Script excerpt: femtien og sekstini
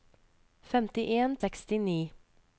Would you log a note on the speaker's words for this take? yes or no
no